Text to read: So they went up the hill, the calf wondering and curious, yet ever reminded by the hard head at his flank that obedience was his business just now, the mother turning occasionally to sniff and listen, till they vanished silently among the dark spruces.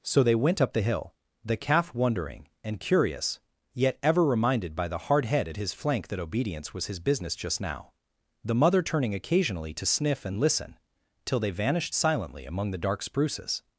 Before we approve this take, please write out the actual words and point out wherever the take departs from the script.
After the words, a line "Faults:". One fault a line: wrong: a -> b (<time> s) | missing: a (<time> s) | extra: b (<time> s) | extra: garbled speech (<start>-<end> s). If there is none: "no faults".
So they went up the hill, the calf wondering and curious, yet ever reminded by the hard head at his flank that obedience was his business just now, the mother turning occasionally to sniff and listen, till they vanished silently among the dark spruces.
Faults:
no faults